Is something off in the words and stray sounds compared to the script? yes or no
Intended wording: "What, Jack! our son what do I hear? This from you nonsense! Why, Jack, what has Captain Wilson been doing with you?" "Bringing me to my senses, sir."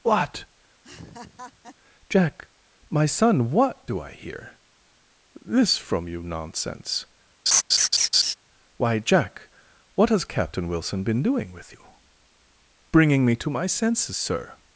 yes